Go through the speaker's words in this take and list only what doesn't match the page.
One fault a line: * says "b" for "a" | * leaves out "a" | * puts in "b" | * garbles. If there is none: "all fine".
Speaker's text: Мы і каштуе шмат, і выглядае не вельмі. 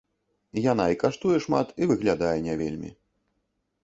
* says "Яна" for "Мы"